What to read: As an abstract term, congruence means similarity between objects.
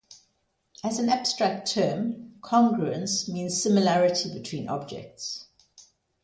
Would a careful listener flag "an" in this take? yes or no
no